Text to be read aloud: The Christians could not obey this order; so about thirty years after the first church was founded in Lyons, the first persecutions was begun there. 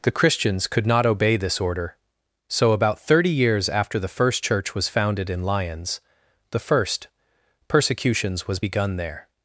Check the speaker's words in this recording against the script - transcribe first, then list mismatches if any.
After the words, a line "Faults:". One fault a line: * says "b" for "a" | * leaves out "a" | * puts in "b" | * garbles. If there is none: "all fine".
The Christians could not obey this order; so about thirty years after the first church was founded in Lyons, the first persecutions was begun there.
Faults:
all fine